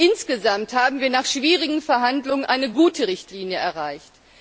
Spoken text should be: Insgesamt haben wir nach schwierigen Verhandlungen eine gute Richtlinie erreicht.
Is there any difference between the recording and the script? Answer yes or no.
no